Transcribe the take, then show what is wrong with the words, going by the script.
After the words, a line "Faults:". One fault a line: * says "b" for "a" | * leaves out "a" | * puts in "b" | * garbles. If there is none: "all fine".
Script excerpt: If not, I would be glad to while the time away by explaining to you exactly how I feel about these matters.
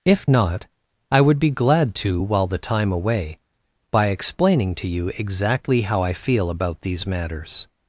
If not, I would be glad to while the time away by explaining to you exactly how I feel about these matters.
Faults:
all fine